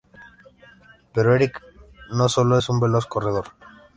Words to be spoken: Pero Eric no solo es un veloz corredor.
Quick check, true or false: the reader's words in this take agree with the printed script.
true